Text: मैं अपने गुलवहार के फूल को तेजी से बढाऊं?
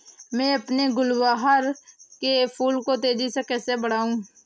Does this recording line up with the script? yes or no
no